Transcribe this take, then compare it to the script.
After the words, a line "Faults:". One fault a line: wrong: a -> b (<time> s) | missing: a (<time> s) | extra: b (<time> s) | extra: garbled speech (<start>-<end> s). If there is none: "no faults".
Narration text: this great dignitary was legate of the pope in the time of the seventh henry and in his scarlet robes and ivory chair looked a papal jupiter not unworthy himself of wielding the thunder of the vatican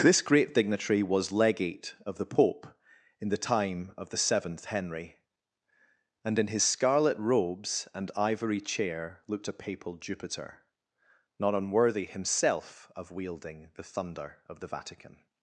this great dignitary was legate of the pope in the time of the seventh henry and in his scarlet robes and ivory chair looked a papal jupiter not unworthy himself of wielding the thunder of the vatican
Faults:
no faults